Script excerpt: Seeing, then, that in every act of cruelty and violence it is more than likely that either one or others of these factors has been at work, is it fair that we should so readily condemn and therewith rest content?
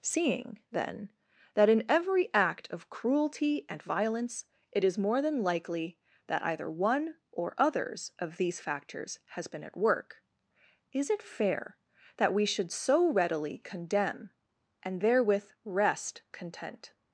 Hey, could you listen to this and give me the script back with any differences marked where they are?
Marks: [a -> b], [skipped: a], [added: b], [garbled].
Seeing, then, that in every act of cruelty and violence it is more than likely that either one or others of these factors has been at work, is it fair that we should so readily condemn and therewith rest content?